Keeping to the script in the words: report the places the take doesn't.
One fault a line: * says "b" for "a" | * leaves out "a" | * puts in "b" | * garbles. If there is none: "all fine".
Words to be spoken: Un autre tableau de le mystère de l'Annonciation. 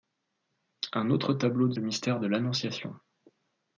all fine